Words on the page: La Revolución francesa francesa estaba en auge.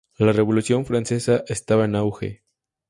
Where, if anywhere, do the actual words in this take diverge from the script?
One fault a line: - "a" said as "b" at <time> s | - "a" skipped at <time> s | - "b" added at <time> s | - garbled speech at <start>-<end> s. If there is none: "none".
- "francesa" skipped at 1.4 s